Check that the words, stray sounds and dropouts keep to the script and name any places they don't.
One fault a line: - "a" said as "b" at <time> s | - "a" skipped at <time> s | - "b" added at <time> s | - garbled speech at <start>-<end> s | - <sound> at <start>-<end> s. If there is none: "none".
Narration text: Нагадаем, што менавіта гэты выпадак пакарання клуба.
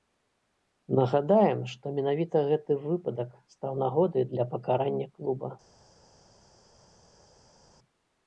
- "стаў нагодай для" added at 3.5 s